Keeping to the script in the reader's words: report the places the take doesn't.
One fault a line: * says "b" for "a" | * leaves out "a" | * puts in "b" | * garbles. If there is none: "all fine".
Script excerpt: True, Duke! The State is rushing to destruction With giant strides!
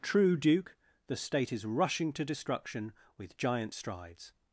all fine